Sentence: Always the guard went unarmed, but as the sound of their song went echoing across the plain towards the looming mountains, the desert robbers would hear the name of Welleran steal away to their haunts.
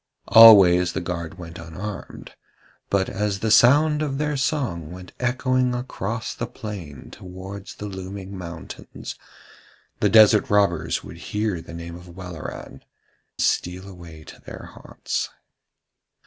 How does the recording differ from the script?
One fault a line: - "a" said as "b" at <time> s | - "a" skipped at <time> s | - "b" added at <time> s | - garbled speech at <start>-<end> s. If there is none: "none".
none